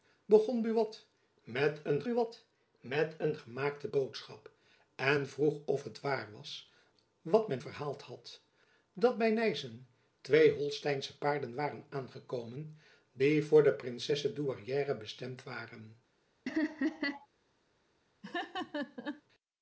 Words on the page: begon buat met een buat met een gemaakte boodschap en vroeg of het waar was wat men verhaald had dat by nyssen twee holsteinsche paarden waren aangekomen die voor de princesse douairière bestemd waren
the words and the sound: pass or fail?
fail